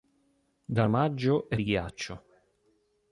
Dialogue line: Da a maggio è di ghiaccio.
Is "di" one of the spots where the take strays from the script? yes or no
no